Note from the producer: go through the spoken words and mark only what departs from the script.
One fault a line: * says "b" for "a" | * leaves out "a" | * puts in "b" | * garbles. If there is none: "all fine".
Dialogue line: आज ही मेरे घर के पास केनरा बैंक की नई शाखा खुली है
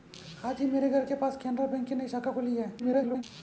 * garbles